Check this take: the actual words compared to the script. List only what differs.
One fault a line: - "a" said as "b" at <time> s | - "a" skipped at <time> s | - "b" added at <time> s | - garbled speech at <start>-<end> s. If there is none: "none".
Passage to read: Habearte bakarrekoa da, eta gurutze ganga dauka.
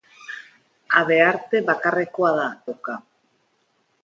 - "eta gurutze ganga" skipped at 2.5 s